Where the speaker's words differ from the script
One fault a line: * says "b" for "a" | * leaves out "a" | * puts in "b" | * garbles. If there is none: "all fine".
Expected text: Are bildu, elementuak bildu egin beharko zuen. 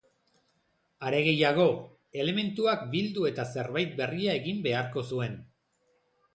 * says "gehiago" for "bildu"
* puts in "eta zerbait berria"